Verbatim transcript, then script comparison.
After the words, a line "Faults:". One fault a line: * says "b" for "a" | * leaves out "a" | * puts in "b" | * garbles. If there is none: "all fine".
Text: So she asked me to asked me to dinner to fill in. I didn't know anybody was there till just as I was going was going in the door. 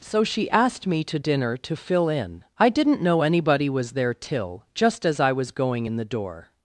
So she asked me to dinner to fill in. I didn't know anybody was there till just as I was going in the door.
Faults:
* leaves out "asked me to"
* leaves out "was going"